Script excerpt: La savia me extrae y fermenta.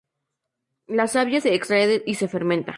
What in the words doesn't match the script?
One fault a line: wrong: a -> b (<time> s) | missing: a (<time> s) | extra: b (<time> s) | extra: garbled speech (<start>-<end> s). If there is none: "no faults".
wrong: me -> se (1.4 s)
extra: se (2.2 s)